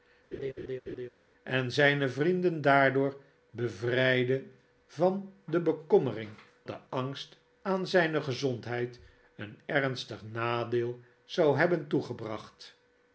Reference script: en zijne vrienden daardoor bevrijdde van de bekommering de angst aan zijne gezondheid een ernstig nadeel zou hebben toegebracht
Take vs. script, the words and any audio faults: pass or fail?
fail